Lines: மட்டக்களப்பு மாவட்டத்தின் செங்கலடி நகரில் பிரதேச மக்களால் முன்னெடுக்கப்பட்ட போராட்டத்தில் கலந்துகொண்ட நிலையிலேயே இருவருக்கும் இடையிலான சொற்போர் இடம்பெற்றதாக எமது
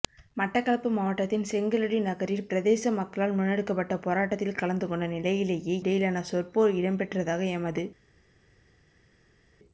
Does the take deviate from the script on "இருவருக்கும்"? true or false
true